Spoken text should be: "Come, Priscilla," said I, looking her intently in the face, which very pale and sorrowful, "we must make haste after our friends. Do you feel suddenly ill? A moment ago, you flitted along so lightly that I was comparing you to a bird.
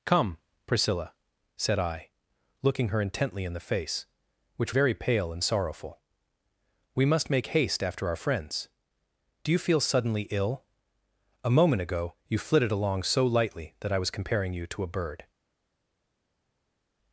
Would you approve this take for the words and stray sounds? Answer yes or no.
yes